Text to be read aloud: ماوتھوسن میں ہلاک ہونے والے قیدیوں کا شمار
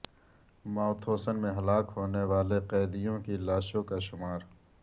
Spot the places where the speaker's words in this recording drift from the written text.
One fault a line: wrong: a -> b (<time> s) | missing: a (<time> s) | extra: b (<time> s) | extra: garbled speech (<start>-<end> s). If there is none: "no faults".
extra: کی لاشوں (3.2 s)